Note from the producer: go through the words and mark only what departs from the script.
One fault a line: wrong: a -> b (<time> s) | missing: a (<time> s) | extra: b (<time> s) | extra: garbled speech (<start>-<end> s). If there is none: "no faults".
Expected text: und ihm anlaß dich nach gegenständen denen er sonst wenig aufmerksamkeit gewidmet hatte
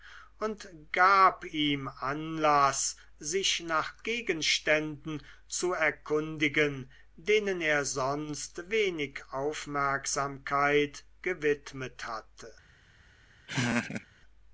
extra: gab (0.9 s)
wrong: dich -> sich (3.2 s)
extra: zu erkundigen (5.5 s)